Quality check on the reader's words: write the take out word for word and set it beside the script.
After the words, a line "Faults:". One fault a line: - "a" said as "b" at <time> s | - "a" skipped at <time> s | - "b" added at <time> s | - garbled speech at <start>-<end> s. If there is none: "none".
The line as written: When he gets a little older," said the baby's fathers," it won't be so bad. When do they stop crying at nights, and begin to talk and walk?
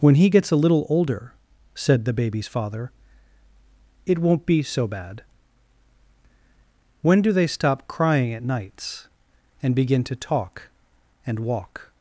When he gets a little older," said the baby's father," it won't be so bad. When do they stop crying at nights, and begin to talk and walk?
Faults:
- "fathers" said as "father" at 2.5 s